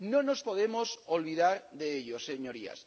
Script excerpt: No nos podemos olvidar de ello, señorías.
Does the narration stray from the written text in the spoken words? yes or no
no